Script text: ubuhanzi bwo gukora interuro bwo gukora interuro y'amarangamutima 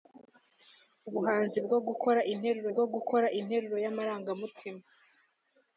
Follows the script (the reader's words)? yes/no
yes